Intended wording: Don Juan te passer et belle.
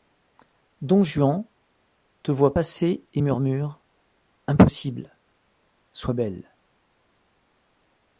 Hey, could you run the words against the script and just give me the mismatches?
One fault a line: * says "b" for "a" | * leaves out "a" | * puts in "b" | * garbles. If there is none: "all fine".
* puts in "voit"
* puts in "murmure Impossible Sois"